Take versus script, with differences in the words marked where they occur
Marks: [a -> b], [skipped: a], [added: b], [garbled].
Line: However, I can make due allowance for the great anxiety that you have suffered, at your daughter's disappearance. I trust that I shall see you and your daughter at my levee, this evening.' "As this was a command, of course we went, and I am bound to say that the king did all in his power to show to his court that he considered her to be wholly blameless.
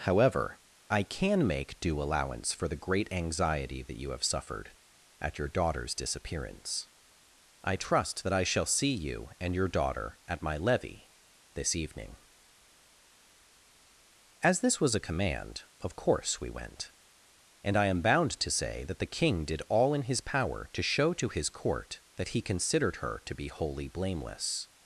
However, I can make due allowance for the great anxiety that you have suffered, at your daughter's disappearance. I trust that I shall see you and your daughter at my levee, this evening.' "As this was a command, of course we went, and I am bound to say that the king did all in his power to show to his court that he considered her to be wholly blameless.